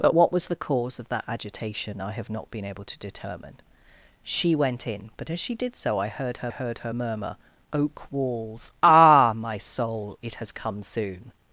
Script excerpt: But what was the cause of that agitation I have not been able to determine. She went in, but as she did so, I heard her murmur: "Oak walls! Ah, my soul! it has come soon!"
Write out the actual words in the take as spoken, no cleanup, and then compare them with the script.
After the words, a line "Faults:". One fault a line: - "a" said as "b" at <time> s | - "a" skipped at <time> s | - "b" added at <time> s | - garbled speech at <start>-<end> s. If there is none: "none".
But what was the cause of that agitation I have not been able to determine. She went in, but as she did so, I heard her heard her murmur: "Oak walls! Ah, my soul! it has come soon!"
Faults:
- "heard her" added at 6.5 s